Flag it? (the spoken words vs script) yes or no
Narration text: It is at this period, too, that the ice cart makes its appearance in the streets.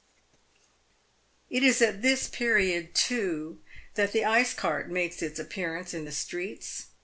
no